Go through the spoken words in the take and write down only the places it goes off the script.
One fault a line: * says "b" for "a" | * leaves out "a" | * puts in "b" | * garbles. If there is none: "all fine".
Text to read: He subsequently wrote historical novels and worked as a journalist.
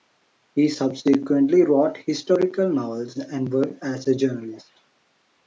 all fine